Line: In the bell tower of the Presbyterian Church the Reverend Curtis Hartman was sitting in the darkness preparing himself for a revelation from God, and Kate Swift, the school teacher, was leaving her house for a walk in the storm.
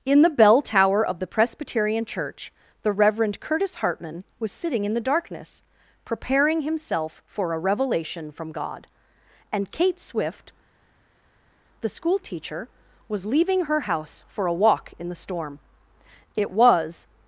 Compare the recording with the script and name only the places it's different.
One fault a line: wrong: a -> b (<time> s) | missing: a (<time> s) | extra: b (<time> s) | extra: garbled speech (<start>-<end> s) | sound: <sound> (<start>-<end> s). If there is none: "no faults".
extra: It was (16.3 s)